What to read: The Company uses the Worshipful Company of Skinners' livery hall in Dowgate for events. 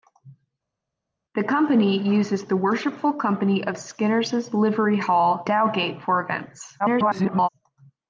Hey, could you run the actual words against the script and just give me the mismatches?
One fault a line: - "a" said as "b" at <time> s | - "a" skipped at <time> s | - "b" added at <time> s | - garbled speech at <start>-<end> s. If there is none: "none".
- "in" skipped at 5.5 s
- garbled speech at 6.8-7.5 s